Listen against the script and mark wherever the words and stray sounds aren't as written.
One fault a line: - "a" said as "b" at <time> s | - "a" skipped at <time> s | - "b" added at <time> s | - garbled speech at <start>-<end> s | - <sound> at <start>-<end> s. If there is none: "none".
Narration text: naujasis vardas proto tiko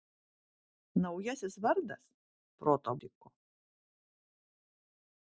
none